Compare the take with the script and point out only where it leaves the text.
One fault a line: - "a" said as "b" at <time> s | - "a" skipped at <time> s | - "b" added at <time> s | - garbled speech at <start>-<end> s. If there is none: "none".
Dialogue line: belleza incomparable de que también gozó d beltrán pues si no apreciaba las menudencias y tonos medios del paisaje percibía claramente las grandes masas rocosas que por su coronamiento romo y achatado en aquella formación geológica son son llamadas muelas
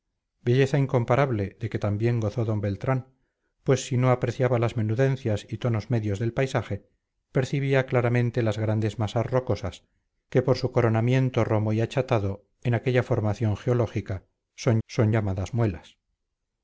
none